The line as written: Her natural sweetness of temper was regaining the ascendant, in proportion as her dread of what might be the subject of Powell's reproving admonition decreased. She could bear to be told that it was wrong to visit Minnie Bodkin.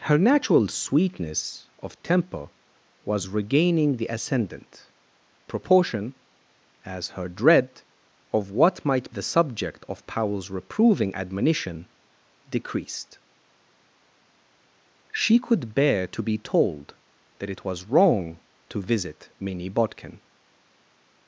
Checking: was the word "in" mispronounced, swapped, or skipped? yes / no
yes